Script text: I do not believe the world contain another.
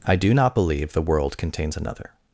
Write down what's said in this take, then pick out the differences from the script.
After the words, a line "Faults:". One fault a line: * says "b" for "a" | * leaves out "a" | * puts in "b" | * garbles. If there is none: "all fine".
I do not believe the world contains another.
Faults:
* says "contains" for "contain"